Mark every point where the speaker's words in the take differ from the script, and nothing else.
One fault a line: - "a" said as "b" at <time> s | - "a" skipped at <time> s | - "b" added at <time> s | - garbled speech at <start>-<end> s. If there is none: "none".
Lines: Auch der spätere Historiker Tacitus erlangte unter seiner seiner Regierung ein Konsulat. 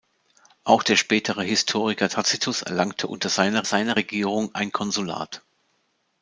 none